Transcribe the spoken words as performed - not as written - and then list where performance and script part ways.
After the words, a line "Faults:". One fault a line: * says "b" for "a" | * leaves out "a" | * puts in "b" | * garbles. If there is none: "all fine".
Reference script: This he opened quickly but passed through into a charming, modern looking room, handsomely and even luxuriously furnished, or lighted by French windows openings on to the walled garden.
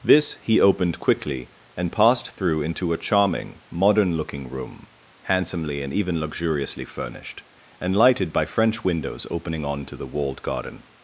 This he opened quickly and passed through into a charming, modern looking room, handsomely and even luxuriously furnished, and lighted by French windows opening on to the walled garden.
Faults:
* says "and" for "but"
* says "and" for "or"
* says "opening" for "openings"